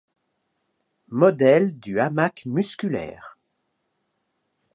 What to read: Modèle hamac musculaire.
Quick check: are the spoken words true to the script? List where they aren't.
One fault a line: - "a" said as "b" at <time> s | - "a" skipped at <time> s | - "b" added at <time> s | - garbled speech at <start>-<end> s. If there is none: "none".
- "du" added at 1.8 s